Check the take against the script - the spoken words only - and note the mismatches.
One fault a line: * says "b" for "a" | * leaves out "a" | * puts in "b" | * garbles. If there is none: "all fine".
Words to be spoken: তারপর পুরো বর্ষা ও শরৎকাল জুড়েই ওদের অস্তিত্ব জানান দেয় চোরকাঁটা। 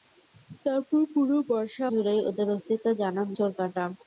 * leaves out "ও শরৎকাল"
* leaves out "দেয়"